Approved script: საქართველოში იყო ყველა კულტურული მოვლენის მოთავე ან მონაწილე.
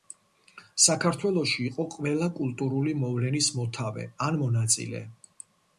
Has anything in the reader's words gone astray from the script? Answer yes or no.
no